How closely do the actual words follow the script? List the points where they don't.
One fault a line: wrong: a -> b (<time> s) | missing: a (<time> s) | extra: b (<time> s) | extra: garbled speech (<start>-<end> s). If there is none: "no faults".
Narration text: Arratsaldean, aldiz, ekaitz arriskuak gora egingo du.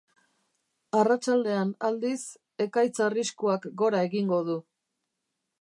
no faults